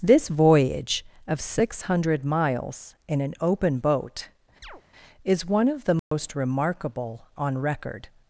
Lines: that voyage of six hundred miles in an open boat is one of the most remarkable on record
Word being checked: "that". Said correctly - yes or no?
no